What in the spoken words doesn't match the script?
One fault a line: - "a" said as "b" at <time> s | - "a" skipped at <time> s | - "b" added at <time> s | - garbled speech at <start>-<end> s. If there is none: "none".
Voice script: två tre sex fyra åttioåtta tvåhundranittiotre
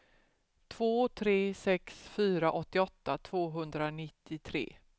none